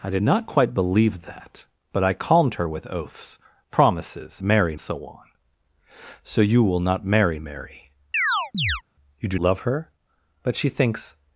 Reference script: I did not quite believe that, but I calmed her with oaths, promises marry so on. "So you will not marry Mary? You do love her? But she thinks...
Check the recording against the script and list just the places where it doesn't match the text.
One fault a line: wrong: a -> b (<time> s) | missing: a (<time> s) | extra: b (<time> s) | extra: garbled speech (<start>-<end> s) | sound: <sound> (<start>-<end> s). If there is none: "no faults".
sound: chirp (8.1-8.8 s)